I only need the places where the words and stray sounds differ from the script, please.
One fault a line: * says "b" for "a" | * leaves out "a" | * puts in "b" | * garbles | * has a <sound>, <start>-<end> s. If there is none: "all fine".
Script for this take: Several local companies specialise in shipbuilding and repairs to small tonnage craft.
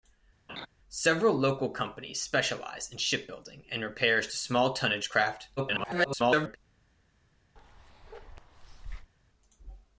* has a laugh, 0.5-0.7 s
* garbles
* has a bark, 7.6-9.1 s